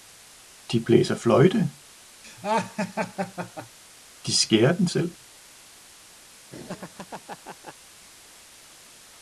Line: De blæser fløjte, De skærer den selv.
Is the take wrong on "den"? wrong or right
right